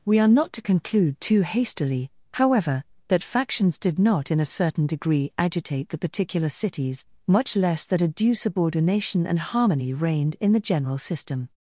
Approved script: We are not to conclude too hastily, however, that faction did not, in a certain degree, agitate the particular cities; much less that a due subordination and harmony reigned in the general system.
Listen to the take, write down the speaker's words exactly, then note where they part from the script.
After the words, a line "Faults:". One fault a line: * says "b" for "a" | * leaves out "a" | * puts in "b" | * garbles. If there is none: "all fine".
We are not to conclude too hastily, however, that factions did not, in a certain degree, agitate the particular cities; much less that a due subordination and harmony reigned in the general system.
Faults:
* says "factions" for "faction"